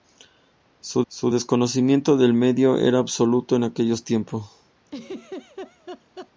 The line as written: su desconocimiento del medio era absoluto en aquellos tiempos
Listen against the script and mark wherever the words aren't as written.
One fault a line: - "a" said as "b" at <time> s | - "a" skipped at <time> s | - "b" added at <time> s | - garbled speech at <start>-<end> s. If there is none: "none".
- "su" added at 1.1 s